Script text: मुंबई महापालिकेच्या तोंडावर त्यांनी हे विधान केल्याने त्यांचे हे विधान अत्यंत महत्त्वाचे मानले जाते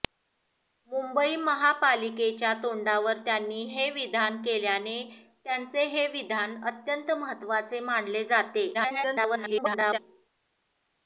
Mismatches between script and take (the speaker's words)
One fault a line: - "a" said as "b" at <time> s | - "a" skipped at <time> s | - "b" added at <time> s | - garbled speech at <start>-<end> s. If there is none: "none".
- garbled speech at 8.7-10.0 s